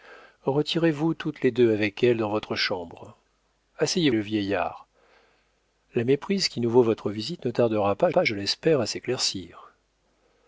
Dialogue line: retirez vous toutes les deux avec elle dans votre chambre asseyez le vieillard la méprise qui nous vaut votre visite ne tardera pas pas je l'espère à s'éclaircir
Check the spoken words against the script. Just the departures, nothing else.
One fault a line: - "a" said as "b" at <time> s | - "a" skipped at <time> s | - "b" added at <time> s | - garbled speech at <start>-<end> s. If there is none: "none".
none